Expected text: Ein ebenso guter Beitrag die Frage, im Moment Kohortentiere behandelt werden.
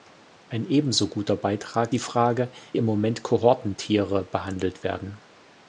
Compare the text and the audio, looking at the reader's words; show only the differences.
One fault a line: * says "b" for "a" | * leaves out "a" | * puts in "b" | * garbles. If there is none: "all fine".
all fine